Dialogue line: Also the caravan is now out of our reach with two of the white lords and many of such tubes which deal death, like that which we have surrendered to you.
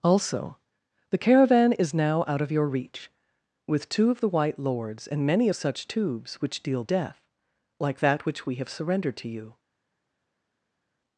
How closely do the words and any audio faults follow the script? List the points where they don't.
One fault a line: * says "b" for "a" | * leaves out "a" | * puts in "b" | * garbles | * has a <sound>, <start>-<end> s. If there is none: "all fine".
* says "your" for "our"